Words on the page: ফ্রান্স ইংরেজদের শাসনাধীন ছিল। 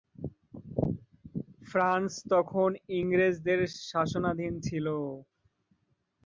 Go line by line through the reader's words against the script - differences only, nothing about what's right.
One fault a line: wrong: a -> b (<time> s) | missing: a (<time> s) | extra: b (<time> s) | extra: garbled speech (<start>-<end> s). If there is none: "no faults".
extra: তখন (2.3 s)